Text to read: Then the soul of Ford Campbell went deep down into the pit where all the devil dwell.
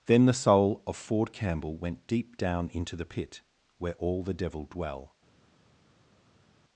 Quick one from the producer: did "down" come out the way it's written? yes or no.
yes